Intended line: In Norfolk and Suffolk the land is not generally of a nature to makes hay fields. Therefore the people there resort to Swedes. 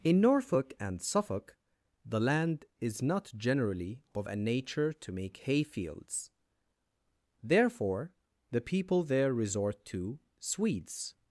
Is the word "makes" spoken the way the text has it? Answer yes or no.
no